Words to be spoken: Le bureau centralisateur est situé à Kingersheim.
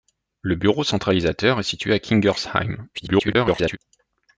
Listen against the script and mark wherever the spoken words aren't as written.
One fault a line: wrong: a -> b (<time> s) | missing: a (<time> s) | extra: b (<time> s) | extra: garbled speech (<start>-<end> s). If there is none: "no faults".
extra: garbled speech (2.9-3.8 s)